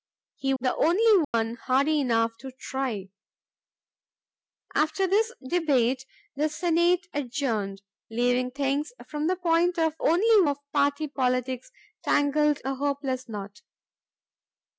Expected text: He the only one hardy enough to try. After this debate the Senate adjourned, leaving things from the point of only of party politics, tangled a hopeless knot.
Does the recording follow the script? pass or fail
pass